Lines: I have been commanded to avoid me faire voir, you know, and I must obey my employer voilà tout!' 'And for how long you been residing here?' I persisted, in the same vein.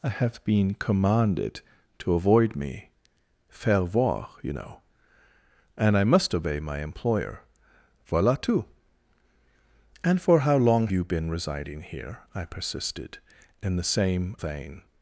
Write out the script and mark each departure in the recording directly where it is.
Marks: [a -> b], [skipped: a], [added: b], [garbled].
I have been commanded to avoid me faire voir, you know, and I must obey my employer voilà tout!' 'And for how long you been residing here?' I persisted, in the same vein.